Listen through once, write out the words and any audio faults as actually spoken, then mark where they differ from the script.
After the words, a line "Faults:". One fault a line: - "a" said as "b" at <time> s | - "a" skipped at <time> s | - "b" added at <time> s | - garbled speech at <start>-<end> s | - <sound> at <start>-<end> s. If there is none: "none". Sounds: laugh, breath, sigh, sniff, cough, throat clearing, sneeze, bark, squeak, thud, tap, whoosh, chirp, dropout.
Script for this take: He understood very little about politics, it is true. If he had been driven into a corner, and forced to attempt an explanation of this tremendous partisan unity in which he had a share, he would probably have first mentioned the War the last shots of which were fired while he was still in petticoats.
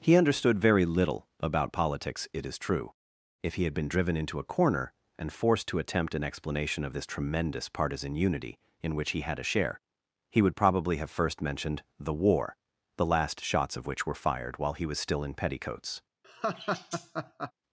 He understood very little about politics, it is true. If he had been driven into a corner, and forced to attempt an explanation of this tremendous partisan unity in which he had a share, he would probably have first mentioned the War the last shots of which were fired while he was still in petticoats.
Faults:
- laugh at 16.2-17.5 s